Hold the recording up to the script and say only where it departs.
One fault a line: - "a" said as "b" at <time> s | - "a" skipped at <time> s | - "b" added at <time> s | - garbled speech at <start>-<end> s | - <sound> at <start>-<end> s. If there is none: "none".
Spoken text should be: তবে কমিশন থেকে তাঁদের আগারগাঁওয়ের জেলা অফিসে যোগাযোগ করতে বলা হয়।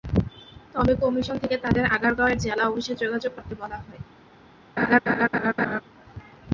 - laugh at 4.8-5.8 s